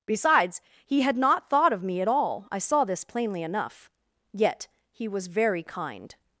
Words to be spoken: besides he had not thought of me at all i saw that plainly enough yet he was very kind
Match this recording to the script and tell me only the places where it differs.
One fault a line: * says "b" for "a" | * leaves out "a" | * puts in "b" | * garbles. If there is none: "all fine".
* says "this" for "that"